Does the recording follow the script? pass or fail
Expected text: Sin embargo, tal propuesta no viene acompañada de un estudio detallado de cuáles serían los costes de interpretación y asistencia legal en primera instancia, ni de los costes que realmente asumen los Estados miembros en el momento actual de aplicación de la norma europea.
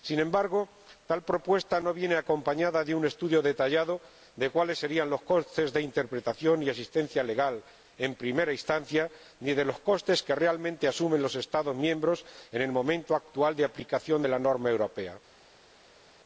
pass